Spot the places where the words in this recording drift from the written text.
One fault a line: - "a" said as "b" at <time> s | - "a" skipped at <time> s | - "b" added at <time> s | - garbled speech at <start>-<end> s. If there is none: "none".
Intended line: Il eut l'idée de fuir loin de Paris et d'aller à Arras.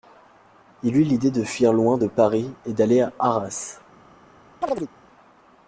none